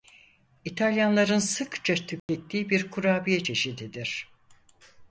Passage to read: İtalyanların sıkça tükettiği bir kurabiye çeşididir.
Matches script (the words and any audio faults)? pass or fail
fail